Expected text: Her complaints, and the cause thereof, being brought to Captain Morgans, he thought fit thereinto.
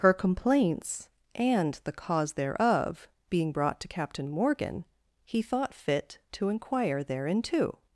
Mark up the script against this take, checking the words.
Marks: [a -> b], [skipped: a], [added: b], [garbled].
Her complaints, and the cause thereof, being brought to Captain [Morgans, -> Morgan] he thought fit [added: to inquire] thereinto.